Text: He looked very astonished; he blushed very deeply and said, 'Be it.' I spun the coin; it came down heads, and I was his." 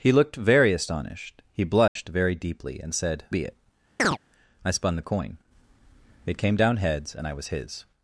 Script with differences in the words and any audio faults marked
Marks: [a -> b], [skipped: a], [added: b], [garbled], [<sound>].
He looked very astonished; he blushed [dropout] very deeply and said, 'Be it.' [chirp] I spun the coin; it came down heads, and I was his."